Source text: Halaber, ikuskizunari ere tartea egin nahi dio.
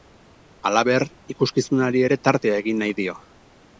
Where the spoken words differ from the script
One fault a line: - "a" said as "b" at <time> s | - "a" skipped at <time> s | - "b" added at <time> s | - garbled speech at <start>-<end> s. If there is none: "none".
none